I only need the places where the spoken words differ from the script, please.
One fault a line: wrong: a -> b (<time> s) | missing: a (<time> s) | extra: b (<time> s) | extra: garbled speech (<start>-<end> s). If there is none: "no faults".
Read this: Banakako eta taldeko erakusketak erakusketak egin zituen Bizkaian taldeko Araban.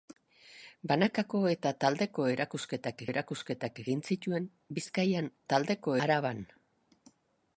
no faults